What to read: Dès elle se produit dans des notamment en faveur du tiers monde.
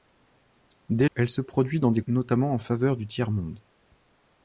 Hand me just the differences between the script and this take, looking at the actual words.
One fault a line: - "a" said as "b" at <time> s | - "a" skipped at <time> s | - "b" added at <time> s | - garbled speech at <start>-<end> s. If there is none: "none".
none